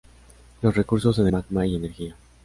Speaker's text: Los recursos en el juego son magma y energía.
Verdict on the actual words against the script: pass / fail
fail